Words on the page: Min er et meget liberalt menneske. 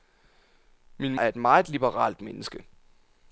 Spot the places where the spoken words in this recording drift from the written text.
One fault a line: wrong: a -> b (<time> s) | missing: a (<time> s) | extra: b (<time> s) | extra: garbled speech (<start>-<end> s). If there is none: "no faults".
no faults